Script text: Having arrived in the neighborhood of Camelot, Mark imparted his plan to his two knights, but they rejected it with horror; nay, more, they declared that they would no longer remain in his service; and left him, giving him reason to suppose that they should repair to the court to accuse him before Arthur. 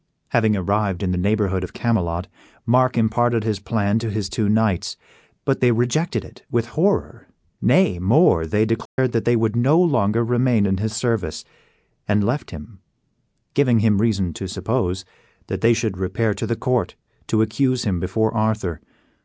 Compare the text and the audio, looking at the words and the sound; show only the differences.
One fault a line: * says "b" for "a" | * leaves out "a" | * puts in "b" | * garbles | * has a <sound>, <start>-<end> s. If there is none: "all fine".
* has a dropout, 8.9-9.0 s